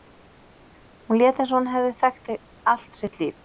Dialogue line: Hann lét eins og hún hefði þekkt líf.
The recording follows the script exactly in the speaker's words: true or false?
false